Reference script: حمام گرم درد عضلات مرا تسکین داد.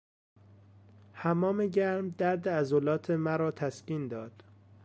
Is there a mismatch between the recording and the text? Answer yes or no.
no